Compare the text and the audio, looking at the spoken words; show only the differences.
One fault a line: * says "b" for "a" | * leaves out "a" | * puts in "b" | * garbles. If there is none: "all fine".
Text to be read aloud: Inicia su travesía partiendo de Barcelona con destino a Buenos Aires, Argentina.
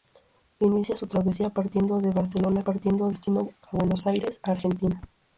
* says "partiendo" for "con"